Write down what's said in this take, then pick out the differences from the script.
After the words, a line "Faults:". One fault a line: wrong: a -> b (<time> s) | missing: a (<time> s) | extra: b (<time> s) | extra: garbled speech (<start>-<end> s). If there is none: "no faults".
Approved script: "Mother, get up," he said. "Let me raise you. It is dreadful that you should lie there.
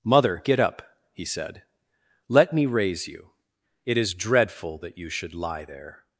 "Mother, get up," he said. "Let me raise you. It is dreadful that you should lie there.
Faults:
no faults